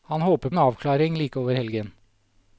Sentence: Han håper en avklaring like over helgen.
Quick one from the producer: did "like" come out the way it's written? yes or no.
yes